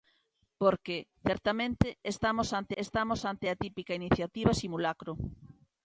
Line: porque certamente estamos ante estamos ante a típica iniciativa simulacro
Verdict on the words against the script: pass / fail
pass